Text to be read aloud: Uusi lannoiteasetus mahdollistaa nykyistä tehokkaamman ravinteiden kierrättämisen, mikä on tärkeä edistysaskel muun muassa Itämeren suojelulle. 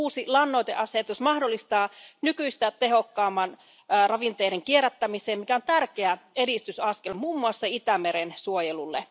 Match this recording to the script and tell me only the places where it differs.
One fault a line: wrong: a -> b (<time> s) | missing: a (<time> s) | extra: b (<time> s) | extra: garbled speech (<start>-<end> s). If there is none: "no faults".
no faults